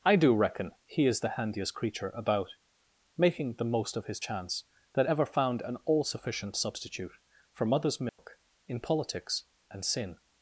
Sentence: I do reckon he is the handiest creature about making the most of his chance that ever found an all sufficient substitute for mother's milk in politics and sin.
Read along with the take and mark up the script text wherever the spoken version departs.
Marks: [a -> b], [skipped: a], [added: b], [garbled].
I do reckon he is the handiest creature about making the most of his chance that ever found an all sufficient substitute for mother's milk in politics and sin.